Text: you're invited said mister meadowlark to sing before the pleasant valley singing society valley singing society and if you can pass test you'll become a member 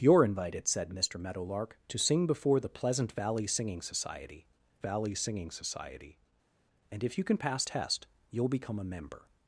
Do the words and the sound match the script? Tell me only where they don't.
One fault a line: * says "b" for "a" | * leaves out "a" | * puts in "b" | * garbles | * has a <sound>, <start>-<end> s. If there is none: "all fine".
all fine